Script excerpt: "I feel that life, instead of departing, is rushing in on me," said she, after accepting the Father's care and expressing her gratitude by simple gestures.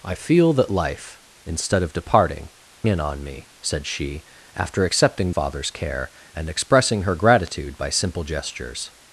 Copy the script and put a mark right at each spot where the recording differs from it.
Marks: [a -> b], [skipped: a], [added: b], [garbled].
"I feel that life, instead of departing, [skipped: is rushing] in on me," said she, after accepting [skipped: the] Father's care and expressing her gratitude by simple gestures.